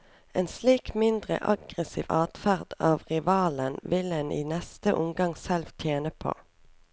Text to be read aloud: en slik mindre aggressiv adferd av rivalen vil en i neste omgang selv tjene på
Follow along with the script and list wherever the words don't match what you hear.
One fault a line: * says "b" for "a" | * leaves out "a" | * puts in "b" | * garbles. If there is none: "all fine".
all fine